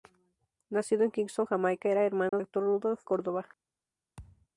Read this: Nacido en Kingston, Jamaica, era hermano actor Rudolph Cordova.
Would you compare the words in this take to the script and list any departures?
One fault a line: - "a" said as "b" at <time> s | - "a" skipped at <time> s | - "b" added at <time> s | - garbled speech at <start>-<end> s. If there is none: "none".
none